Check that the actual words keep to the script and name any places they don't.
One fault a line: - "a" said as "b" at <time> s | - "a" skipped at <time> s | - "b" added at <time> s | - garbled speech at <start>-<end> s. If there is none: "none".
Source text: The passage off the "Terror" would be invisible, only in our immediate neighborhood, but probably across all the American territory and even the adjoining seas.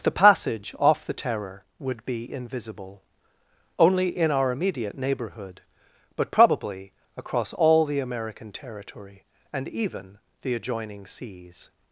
none